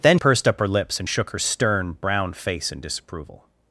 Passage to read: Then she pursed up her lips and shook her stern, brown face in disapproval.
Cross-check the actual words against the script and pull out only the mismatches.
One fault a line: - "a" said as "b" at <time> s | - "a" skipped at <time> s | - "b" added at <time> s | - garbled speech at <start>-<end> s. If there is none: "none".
- "she" skipped at 0.2 s